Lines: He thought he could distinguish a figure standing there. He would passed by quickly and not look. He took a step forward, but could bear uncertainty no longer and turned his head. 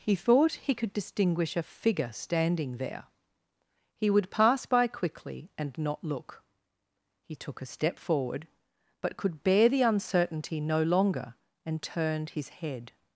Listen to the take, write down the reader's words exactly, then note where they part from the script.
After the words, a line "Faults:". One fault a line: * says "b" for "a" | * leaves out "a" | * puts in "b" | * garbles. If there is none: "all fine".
He thought he could distinguish a figure standing there. He would pass by quickly and not look. He took a step forward, but could bear the uncertainty no longer and turned his head.
Faults:
* says "pass" for "passed"
* puts in "the"